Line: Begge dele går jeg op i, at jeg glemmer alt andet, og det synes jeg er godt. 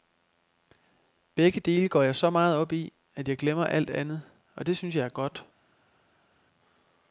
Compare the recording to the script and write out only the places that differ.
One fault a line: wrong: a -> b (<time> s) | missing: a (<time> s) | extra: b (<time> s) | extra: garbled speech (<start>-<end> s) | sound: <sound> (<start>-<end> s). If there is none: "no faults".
extra: så meget (2.1 s)